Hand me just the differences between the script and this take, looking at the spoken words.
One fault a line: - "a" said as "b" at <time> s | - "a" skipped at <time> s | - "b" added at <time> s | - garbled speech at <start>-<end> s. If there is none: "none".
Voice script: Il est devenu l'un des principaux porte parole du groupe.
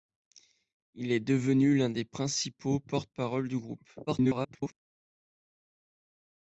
- garbled speech at 4.1-4.8 s